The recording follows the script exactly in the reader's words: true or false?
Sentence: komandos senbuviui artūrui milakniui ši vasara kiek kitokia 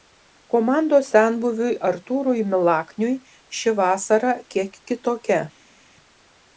true